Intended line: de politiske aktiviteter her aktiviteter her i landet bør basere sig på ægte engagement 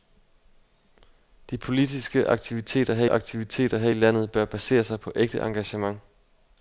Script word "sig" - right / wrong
right